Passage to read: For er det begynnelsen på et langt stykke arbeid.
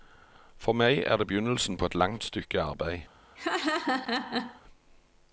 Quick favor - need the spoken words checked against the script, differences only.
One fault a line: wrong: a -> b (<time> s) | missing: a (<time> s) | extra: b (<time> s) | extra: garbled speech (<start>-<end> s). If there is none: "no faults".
extra: meg (0.7 s)